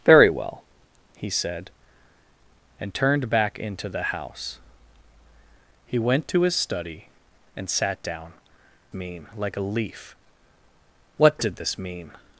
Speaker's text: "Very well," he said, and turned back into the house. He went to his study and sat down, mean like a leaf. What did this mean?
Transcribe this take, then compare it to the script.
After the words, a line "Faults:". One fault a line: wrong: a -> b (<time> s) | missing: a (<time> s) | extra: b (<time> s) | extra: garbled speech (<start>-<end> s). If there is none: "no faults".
"Very well," he said, and turned back into the house. He went to his study and sat down, mean like a leaf. What did this mean?
Faults:
no faults